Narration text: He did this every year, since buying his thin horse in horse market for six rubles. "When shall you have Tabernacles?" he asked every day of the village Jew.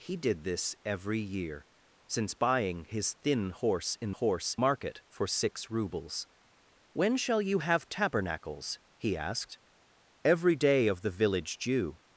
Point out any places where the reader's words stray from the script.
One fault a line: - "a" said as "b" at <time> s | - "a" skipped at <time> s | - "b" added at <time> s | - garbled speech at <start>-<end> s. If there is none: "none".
none